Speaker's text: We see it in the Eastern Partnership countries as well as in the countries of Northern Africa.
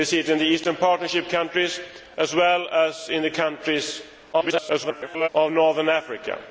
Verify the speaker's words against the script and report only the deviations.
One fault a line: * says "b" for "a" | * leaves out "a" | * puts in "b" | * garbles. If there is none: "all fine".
* garbles